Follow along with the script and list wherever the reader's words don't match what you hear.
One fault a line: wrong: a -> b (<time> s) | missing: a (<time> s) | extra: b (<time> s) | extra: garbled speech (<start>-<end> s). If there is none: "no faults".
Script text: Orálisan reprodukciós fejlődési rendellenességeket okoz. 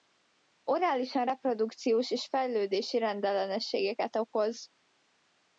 extra: és (2.1 s)